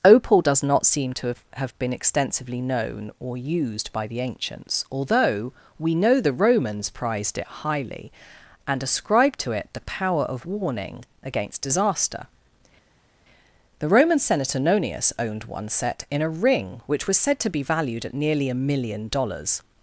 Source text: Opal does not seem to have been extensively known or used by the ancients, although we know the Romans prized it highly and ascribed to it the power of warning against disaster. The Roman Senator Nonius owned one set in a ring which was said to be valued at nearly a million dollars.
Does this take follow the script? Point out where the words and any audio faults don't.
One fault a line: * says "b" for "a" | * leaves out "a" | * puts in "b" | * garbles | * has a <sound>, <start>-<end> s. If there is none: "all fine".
* puts in "have"